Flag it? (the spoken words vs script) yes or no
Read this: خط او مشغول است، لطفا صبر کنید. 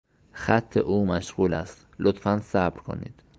no